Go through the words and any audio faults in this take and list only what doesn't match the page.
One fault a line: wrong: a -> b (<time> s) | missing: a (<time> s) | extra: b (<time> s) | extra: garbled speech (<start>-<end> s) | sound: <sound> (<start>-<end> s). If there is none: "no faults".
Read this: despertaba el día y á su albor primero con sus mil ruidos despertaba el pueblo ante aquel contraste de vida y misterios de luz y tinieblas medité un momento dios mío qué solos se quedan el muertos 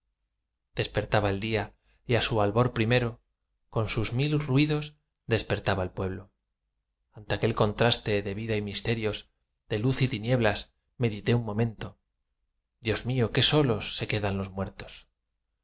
wrong: el -> los (14.4 s)